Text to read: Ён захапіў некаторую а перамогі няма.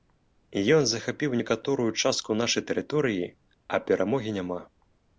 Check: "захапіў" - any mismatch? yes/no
no